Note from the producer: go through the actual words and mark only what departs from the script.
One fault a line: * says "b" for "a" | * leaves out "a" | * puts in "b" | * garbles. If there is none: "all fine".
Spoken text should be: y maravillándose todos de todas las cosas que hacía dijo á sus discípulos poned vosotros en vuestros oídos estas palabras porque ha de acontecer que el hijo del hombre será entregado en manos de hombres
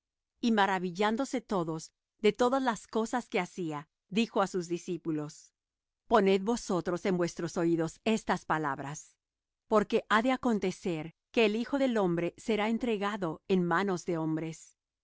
all fine